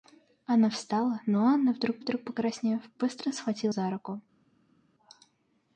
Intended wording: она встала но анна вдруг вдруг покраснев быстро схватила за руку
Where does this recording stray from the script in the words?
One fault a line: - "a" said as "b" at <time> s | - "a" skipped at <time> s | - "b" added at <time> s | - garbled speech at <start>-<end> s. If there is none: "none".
none